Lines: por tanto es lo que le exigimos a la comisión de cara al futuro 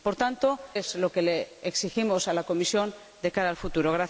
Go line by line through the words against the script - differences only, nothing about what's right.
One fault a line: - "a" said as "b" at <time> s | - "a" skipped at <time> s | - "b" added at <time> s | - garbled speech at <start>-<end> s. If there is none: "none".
none